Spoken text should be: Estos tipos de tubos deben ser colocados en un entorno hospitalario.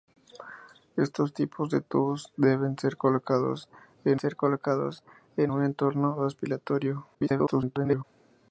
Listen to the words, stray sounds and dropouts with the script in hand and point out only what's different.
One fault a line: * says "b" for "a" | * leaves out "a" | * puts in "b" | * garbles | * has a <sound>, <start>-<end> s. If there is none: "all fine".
* puts in "ser colocados en"
* garbles